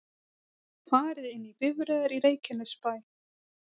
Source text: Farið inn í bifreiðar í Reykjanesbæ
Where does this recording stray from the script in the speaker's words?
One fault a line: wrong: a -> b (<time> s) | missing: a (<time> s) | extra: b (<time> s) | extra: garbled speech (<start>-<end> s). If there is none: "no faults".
no faults